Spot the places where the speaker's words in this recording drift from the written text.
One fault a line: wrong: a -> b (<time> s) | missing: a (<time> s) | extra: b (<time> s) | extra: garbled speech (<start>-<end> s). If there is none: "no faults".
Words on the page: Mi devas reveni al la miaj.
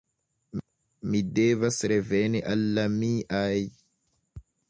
no faults